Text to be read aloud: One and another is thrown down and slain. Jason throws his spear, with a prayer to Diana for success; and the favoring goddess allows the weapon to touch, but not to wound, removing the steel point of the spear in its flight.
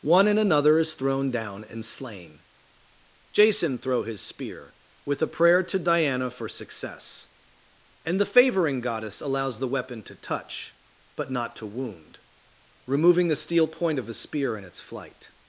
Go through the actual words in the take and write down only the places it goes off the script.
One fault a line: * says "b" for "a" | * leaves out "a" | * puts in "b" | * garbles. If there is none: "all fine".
* says "throw" for "throws"